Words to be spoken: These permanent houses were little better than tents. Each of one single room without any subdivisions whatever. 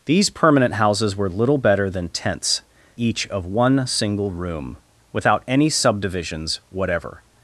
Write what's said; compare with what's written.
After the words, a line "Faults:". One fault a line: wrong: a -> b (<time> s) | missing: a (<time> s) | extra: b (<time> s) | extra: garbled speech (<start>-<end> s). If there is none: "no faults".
These permanent houses were little better than tents. Each of one single room without any subdivisions whatever.
Faults:
no faults